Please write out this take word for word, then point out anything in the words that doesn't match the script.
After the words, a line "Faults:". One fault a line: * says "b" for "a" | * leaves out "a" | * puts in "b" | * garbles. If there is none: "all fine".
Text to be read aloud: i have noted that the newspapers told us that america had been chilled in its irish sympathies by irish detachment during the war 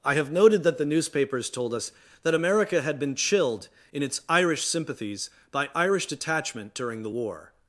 i have noted that the newspapers told us that america had been chilled in its irish sympathies by irish detachment during the war
Faults:
all fine